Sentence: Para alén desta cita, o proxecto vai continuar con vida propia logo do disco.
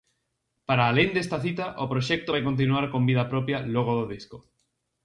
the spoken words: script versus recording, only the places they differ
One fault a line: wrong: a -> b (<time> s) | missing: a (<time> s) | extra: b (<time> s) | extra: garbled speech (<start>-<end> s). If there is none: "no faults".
no faults